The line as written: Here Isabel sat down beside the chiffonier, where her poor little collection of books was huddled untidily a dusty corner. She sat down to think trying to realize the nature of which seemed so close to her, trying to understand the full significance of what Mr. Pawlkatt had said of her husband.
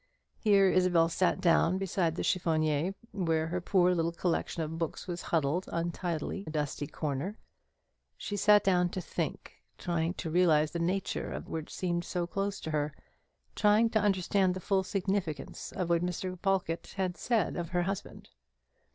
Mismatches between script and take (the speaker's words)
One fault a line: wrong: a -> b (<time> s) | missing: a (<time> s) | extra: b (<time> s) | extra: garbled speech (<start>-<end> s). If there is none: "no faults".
no faults